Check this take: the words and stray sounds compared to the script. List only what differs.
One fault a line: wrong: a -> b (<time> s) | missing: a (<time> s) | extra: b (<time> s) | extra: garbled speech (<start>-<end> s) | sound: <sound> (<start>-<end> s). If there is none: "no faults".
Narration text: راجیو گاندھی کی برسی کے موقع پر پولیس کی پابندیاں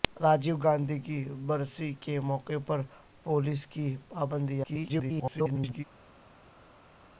extra: garbled speech (4.6-5.8 s)